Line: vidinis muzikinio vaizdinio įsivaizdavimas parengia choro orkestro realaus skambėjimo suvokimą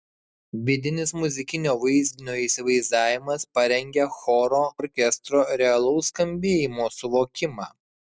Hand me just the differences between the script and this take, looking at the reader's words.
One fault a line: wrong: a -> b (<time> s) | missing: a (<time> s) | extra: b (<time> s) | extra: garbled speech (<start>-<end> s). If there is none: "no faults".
no faults